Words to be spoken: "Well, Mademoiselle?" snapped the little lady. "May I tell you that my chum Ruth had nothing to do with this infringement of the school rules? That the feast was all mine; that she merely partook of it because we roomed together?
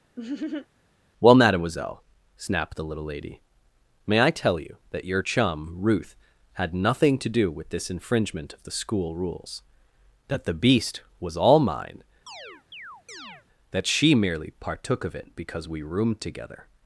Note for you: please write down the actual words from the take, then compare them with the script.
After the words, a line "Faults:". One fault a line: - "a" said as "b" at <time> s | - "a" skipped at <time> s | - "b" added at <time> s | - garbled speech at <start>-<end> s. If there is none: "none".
"Well, Mademoiselle?" snapped the little lady. "May I tell you that your chum Ruth had nothing to do with this infringement of the school rules? That the beast was all mine; that she merely partook of it because we roomed together?
Faults:
- "my" said as "your" at 5.0 s
- "feast" said as "beast" at 10.5 s